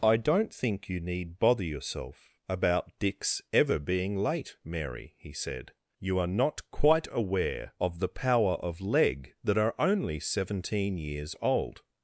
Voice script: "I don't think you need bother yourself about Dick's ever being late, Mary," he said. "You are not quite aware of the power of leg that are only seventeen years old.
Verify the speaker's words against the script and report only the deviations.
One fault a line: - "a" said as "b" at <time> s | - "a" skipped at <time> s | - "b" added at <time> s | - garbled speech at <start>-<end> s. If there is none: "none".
none